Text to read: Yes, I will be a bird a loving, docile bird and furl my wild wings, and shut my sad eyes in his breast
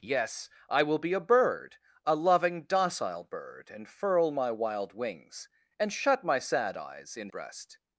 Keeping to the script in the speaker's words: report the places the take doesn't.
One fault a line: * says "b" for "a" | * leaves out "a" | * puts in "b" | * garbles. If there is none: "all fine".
* leaves out "his"